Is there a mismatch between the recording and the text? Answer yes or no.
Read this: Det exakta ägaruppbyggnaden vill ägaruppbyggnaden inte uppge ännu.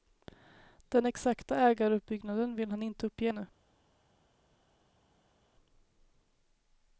yes